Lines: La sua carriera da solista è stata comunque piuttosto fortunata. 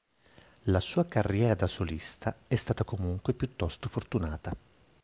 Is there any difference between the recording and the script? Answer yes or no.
no